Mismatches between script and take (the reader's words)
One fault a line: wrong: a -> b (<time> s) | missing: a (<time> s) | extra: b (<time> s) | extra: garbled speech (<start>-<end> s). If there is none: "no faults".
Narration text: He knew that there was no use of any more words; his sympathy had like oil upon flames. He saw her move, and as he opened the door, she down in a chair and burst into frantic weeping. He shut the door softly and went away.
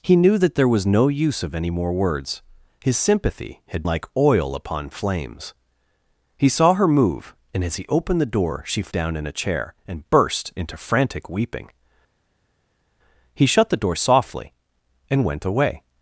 no faults